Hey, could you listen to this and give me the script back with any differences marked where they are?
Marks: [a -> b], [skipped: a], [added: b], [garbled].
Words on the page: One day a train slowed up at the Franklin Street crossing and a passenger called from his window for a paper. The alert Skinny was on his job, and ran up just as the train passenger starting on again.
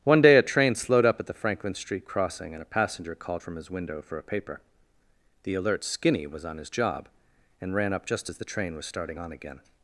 One day a train slowed up at the Franklin Street crossing and a passenger called from his window for a paper. The alert Skinny was on his job, and ran up just as the train [passenger -> was] starting on again.